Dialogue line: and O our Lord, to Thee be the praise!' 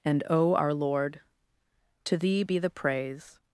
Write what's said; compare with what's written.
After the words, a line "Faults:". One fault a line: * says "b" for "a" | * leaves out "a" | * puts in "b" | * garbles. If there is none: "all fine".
and O our Lord, to Thee be the praise!'
Faults:
all fine